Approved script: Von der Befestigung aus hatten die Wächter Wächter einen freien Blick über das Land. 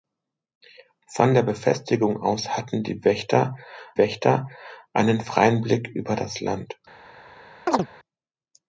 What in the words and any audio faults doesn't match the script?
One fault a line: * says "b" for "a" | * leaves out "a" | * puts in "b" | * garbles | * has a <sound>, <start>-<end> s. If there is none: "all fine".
* has a chirp, 7.7-7.9 s